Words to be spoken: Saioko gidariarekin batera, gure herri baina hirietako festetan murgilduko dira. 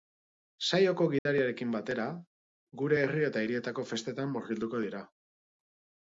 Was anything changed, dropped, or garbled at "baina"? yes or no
yes